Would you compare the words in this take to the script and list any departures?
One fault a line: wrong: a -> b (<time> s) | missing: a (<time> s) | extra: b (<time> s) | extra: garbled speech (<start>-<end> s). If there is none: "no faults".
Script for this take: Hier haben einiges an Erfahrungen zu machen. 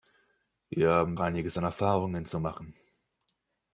no faults